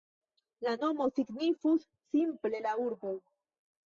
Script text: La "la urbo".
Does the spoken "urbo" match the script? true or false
true